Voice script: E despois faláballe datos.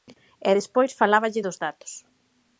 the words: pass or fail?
fail